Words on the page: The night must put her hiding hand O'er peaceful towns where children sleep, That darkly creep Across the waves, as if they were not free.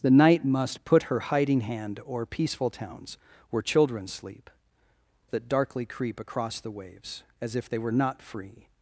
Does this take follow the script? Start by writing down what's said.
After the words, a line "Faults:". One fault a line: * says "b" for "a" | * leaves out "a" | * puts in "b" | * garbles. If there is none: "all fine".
The night must put her hiding hand O'er peaceful towns where children sleep, That darkly creep Across the waves, as if they were not free.
Faults:
all fine